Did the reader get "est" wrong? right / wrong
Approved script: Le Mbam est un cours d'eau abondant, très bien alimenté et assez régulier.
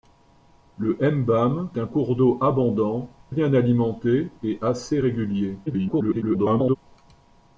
wrong